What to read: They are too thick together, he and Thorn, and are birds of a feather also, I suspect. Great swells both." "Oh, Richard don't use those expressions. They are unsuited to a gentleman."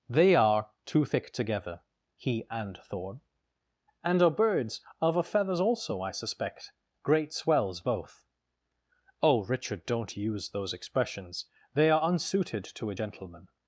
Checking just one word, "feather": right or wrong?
wrong